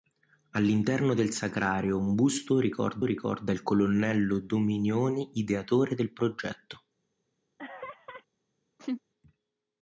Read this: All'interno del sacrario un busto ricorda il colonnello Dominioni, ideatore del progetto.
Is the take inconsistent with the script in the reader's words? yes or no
yes